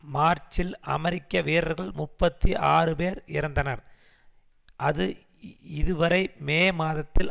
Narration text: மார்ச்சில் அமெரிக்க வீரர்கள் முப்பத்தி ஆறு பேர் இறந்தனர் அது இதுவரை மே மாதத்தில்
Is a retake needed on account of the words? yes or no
no